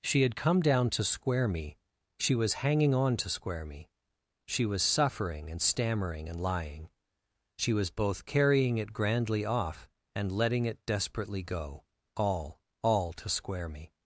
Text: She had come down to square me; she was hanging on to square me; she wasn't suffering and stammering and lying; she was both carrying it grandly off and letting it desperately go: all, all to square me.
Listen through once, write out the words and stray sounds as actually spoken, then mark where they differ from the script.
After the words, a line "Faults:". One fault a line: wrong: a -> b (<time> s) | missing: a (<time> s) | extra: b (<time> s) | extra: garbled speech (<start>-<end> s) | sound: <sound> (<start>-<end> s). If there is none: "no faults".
She had come down to square me; she was hanging on to square me; she was suffering and stammering and lying; she was both carrying it grandly off and letting it desperately go: all, all to square me.
Faults:
wrong: wasn't -> was (4.7 s)